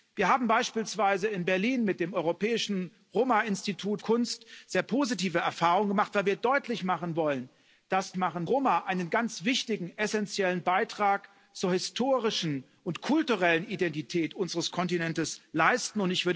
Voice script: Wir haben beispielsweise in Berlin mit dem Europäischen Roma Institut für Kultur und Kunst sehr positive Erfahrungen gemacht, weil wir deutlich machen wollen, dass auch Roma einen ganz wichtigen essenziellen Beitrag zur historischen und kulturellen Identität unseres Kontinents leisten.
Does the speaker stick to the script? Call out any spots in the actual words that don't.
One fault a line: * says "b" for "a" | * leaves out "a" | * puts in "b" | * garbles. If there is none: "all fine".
* leaves out "für Kultur und"
* says "machen" for "auch"